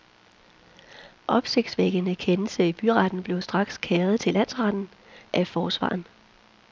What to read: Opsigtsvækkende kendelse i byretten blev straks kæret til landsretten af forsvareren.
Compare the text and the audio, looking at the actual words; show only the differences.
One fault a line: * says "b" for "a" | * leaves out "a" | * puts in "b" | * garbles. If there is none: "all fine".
all fine